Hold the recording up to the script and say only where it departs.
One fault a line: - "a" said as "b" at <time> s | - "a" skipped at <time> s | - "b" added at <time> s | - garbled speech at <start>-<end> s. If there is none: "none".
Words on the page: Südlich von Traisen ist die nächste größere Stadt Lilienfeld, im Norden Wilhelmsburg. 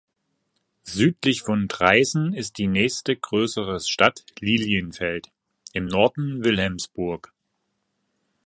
none